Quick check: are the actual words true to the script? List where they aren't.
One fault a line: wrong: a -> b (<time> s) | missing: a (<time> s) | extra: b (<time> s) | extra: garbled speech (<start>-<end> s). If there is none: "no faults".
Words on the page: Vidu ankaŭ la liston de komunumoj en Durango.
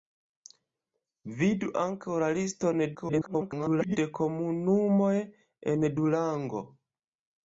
extra: garbled speech (2.9-4.0 s)